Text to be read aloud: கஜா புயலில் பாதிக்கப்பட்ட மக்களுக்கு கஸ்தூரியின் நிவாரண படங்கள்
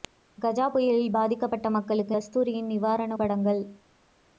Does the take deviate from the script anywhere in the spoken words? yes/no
no